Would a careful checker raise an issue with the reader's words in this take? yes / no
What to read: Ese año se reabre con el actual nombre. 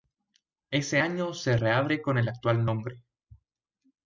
no